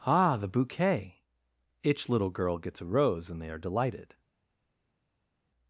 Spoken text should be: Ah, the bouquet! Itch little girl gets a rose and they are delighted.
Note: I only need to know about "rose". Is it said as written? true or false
true